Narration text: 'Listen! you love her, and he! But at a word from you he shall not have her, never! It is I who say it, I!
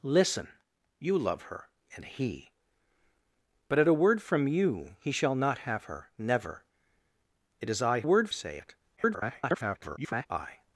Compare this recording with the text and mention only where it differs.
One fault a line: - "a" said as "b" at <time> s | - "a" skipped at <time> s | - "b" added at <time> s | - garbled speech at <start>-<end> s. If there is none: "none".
- "who" said as "word" at 8.0 s
- garbled speech at 9.0-10.3 s